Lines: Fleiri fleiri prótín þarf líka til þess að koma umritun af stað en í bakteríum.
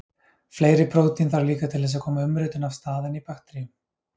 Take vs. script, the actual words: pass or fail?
fail